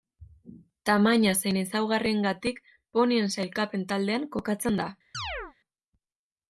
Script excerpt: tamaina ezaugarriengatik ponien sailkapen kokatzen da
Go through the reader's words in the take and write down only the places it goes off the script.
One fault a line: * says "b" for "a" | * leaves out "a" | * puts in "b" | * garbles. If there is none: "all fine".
* puts in "zein"
* puts in "taldean"